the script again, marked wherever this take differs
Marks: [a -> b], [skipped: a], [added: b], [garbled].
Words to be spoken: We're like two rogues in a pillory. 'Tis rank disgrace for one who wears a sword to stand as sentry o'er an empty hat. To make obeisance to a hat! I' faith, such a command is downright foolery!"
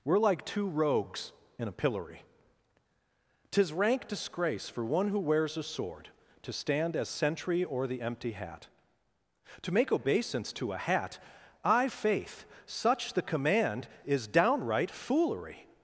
We're like two rogues in a pillory. 'Tis rank disgrace for one who wears a sword to stand as sentry o'er [an -> the] empty hat. To make obeisance to a hat! I' faith, such [a -> the] command is downright foolery!"